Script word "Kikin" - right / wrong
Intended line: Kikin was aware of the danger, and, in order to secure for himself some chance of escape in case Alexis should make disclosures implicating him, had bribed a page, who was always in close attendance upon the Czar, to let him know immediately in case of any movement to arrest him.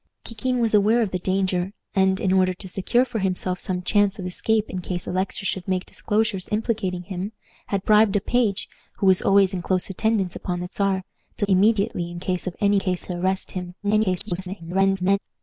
right